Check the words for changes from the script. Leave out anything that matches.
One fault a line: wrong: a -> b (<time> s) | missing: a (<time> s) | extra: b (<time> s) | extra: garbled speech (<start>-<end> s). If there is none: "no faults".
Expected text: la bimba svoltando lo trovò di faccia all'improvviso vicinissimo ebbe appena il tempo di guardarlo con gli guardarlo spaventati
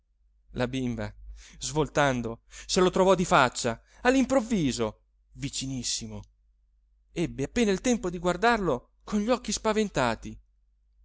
extra: se (2.5 s)
wrong: guardarlo -> occhi (9.3 s)